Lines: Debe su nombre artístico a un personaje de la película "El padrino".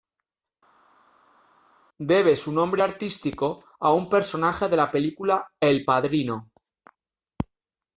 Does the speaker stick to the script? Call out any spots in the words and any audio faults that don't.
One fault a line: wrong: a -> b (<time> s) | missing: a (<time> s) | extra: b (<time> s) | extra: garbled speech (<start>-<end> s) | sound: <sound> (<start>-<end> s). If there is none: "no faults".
no faults